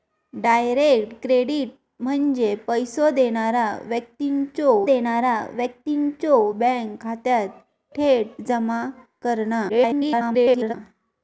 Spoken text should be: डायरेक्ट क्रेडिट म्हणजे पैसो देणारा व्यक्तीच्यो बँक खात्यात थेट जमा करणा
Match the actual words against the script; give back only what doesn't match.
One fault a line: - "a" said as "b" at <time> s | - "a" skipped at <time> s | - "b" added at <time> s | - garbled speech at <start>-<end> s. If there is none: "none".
- "देणारा व्यक्तीच्यो" added at 4.9 s
- garbled speech at 9.7-10.7 s